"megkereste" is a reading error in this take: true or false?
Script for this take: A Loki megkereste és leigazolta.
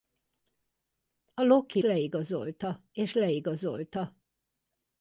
true